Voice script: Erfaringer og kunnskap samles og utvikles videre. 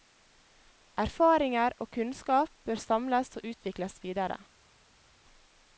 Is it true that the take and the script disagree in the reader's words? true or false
true